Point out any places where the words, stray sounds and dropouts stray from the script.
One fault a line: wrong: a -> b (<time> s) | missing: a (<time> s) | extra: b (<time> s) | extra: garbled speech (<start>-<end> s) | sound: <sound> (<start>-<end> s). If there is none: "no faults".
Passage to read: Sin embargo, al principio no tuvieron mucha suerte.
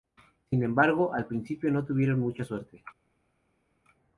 no faults